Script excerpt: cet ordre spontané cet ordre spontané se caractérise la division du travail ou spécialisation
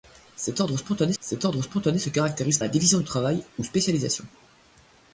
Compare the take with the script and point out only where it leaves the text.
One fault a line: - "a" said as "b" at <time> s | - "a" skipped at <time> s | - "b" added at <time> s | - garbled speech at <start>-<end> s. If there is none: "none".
none